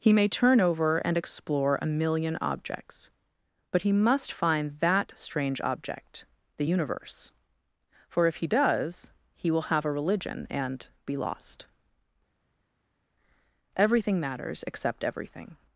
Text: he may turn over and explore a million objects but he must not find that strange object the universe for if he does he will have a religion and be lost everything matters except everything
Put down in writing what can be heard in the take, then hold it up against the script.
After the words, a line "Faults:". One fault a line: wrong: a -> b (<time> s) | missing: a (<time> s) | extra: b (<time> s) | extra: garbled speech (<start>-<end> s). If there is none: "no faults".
he may turn over and explore a million objects but he must find that strange object the universe for if he does he will have a religion and be lost everything matters except everything
Faults:
missing: not (4.3 s)